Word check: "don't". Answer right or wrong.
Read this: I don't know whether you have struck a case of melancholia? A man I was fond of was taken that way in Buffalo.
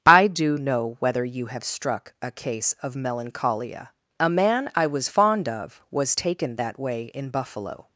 wrong